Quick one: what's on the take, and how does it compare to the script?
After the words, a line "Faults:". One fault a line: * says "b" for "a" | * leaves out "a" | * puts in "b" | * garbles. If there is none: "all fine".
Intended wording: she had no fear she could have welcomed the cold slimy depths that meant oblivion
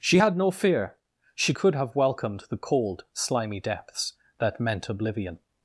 she had no fear she could have welcomed the cold slimy depths that meant oblivion
Faults:
all fine